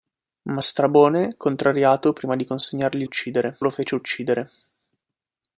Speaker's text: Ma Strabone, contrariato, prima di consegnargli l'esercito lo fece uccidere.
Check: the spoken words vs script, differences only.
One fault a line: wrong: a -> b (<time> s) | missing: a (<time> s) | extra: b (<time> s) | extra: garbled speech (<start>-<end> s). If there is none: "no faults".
wrong: l'esercito -> uccidere (3.0 s)